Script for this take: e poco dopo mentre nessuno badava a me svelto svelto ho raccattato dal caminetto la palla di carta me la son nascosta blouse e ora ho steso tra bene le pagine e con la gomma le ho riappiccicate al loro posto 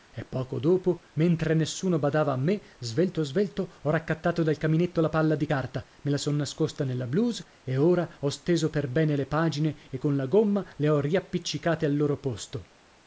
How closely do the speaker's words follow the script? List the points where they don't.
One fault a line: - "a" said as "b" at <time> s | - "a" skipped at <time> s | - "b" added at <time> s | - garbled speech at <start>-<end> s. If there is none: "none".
- "nella" added at 6.8 s
- "tra" said as "per" at 8.7 s